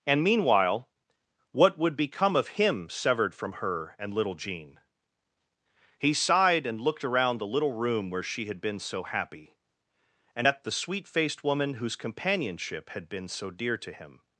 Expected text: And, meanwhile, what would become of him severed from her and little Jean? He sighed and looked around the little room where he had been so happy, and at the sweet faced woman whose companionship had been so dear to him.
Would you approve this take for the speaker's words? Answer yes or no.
no